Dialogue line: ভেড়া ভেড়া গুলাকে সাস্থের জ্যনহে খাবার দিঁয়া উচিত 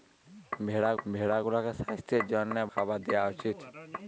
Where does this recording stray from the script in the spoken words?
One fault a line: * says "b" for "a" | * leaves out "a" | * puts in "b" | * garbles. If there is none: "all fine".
all fine